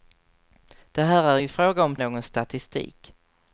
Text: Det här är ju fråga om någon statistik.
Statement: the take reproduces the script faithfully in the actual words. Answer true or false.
true